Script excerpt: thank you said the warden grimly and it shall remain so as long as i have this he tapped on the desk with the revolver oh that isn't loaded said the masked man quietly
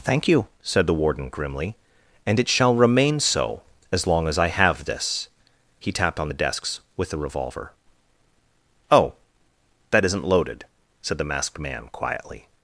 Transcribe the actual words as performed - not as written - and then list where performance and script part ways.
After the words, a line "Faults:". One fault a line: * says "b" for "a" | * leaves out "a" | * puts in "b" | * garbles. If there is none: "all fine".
thank you said the warden grimly and it shall remain so as long as i have this he tapped on the desks with the revolver oh that isn't loaded said the masked man quietly
Faults:
* says "desks" for "desk"